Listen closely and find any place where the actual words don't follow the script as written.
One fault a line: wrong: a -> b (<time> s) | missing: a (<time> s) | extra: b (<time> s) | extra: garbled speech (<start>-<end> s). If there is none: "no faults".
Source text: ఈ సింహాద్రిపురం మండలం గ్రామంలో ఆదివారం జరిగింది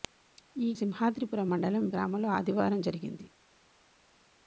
no faults